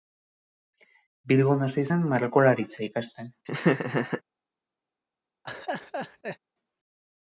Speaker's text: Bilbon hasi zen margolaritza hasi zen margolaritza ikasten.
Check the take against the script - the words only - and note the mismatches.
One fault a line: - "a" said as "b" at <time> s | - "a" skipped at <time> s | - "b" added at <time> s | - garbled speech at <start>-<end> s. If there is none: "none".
- "hasi zen margolaritza" skipped at 2.9 s